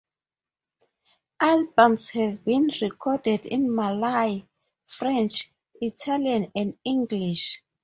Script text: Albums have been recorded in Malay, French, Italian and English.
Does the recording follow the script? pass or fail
pass